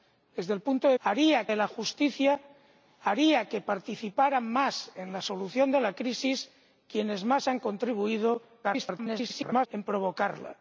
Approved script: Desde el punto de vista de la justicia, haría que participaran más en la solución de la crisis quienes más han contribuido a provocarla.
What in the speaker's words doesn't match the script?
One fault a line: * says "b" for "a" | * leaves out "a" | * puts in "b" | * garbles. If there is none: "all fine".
* says "haría" for "vista"
* garbles